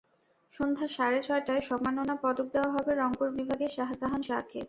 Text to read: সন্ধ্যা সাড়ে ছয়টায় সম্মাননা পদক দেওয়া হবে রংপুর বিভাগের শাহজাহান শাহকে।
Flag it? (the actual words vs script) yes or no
no